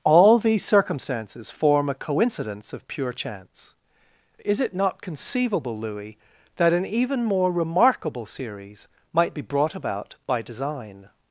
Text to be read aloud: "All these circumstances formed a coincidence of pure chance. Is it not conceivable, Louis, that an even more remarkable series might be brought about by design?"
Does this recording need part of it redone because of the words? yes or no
yes